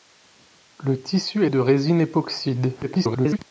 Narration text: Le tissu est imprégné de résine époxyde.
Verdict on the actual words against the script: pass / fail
fail